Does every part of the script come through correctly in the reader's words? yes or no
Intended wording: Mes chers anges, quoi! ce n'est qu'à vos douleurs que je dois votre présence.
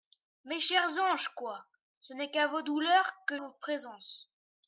no